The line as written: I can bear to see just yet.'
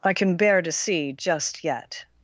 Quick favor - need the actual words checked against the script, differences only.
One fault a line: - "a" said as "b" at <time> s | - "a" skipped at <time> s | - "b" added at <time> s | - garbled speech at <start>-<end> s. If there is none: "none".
none